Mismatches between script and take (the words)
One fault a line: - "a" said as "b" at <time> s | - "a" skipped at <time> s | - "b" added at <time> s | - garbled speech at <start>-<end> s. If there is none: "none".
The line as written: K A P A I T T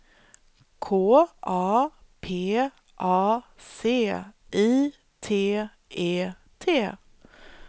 - "C" added at 3.5 s
- "E" added at 5.9 s